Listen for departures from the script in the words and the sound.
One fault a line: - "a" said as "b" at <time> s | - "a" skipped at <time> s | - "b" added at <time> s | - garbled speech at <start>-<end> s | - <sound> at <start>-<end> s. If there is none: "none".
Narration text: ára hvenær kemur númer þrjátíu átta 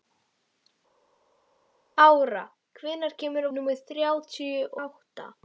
none